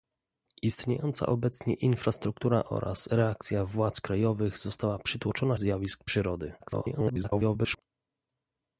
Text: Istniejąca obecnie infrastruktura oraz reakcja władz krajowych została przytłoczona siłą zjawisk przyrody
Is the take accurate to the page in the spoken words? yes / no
no